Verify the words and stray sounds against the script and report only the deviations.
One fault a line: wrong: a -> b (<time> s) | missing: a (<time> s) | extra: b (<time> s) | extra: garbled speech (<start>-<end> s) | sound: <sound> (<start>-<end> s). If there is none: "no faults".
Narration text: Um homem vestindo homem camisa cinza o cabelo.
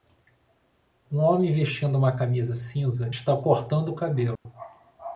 wrong: homem -> uma (1.9 s)
extra: está cortando (3.1 s)
sound: dropout (4.4-4.5 s)